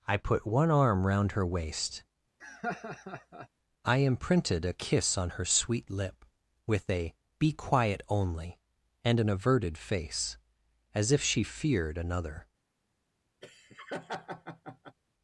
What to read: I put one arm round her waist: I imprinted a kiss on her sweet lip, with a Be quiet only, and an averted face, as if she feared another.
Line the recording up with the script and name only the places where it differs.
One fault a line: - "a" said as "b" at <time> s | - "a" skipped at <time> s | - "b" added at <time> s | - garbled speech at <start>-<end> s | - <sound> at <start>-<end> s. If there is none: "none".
- laugh at 2.4-3.5 s
- laugh at 13.4-15.0 s